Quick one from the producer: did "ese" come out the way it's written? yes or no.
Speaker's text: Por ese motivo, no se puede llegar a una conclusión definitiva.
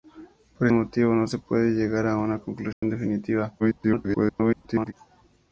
no